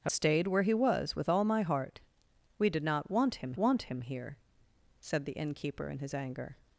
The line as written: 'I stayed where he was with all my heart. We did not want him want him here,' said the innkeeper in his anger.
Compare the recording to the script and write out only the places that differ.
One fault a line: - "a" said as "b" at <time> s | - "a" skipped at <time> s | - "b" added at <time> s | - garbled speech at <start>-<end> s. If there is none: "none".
none